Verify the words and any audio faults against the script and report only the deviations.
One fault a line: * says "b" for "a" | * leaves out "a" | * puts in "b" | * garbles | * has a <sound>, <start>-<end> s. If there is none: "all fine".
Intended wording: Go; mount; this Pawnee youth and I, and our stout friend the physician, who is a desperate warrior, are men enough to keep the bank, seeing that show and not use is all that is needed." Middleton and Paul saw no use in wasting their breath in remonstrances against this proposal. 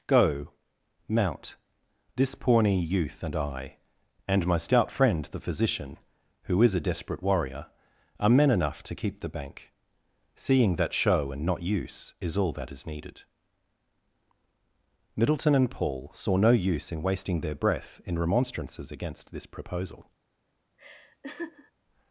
* says "my" for "our"
* has a laugh, 20.8-21.7 s